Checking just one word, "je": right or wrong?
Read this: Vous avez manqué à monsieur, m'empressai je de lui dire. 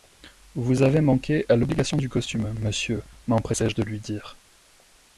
right